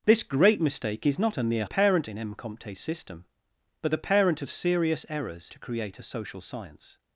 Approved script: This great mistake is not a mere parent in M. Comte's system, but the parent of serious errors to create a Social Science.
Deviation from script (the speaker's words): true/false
false